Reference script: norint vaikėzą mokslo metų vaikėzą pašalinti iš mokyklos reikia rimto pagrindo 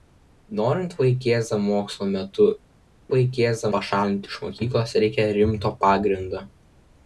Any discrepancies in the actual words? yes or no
no